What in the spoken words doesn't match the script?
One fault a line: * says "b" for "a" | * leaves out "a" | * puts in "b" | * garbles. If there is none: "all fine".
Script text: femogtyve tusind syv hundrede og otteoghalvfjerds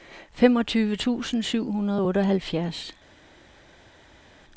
all fine